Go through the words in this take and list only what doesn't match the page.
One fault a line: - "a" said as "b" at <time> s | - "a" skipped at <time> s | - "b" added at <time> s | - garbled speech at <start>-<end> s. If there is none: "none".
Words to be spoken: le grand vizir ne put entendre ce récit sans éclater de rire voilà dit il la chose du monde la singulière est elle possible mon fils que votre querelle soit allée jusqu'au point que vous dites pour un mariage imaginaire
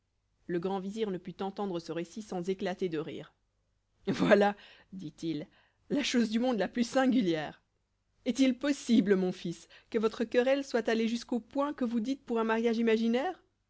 - "plus" added at 6.7 s
- "elle" said as "il" at 8.4 s